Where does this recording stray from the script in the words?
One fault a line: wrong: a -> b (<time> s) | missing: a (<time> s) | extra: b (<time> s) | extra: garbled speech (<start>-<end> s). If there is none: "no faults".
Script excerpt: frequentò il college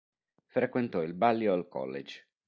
extra: balliol (1.1 s)